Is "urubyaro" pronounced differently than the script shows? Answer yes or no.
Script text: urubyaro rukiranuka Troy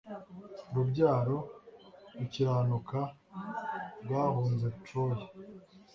no